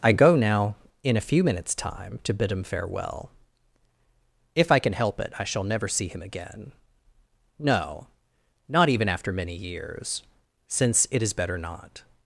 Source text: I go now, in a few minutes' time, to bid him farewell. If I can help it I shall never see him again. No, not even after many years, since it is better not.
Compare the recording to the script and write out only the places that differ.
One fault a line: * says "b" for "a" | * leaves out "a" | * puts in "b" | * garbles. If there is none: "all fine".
all fine